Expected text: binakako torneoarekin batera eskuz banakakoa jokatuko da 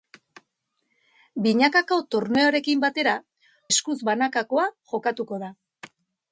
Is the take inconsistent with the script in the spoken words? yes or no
no